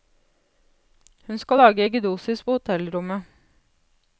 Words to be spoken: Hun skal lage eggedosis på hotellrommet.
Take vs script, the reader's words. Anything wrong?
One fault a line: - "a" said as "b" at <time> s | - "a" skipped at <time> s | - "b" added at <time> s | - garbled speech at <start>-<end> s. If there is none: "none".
none